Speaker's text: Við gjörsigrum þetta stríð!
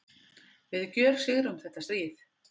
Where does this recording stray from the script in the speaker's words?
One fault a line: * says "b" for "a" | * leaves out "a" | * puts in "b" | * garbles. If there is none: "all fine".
all fine